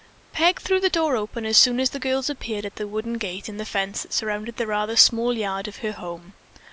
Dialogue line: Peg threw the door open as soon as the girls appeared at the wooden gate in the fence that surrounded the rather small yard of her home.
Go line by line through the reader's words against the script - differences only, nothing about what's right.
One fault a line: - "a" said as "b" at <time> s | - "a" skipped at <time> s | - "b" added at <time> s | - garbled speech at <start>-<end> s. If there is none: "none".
none